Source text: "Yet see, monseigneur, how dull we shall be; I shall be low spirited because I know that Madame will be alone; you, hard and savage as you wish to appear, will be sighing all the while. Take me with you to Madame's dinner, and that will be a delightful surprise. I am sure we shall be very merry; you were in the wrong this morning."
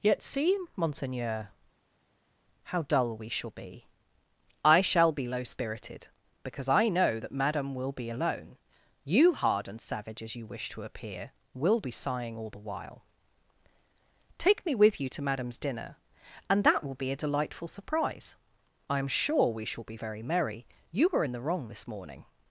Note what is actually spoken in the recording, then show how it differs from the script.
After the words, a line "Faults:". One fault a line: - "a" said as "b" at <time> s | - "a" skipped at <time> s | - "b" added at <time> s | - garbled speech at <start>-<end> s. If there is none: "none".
"Yet see, monseigneur, how dull we shall be; I shall be low spirited because I know that Madame will be alone; you, hard and savage as you wish to appear, will be sighing all the while. Take me with you to Madame's dinner, and that will be a delightful surprise. I am sure we shall be very merry; you were in the wrong this morning."
Faults:
none